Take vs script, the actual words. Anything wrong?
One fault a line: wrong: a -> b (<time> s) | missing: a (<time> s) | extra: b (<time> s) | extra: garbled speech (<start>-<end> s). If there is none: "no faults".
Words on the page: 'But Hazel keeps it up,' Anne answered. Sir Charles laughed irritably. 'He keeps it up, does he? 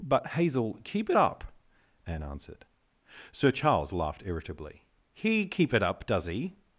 wrong: keeps -> keep (0.8 s)
wrong: keeps -> keep (5.4 s)